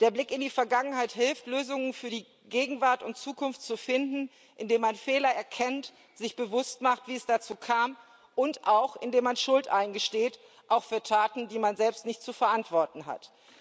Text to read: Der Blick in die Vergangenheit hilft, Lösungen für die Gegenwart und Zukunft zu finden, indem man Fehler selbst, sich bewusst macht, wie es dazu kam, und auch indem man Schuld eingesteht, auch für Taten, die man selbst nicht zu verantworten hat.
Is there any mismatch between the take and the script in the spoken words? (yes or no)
yes